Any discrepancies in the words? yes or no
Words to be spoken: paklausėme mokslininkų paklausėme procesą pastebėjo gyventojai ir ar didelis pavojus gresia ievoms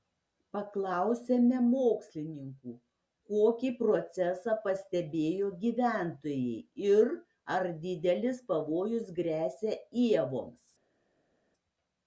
yes